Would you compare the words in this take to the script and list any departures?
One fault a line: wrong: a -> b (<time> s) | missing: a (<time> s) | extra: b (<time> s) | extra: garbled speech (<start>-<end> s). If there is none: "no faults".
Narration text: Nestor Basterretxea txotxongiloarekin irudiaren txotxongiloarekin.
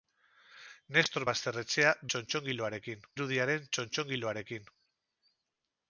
no faults